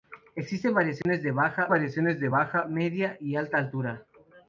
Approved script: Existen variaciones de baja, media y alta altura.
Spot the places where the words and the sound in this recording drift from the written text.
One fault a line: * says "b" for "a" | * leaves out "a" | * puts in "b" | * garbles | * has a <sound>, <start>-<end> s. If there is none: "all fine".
* has a dropout, 1.0-1.1 s
* puts in "variaciones de baja"